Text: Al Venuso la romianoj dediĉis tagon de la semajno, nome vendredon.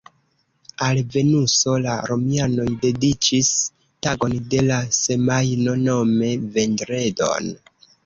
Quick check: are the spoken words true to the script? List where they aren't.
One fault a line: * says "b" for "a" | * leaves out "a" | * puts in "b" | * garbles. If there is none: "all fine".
all fine